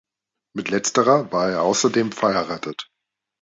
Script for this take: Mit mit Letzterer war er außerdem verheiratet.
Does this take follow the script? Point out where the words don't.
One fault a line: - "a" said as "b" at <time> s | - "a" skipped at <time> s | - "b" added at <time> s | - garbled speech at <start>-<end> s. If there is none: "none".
- "mit" skipped at 0.7 s